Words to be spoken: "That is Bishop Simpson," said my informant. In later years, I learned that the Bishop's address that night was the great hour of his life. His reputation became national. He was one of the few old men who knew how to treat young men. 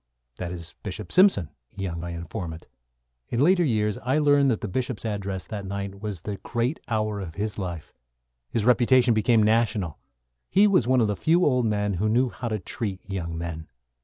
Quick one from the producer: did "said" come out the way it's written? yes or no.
no